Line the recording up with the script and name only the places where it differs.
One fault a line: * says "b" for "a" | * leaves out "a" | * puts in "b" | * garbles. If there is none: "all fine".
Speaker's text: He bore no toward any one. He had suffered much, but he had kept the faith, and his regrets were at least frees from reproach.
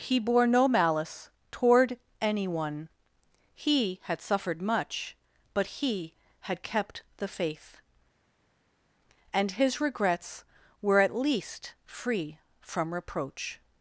* puts in "malice"
* says "free" for "frees"